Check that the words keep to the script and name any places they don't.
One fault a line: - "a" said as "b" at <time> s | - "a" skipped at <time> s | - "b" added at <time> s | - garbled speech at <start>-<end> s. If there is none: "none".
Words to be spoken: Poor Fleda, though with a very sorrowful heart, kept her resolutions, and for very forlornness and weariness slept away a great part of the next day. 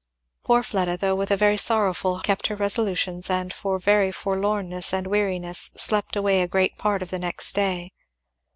- "heart" skipped at 2.1 s